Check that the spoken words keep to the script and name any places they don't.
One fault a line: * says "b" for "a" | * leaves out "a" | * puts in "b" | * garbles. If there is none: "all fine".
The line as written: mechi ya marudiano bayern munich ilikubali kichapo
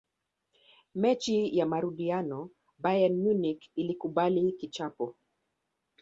all fine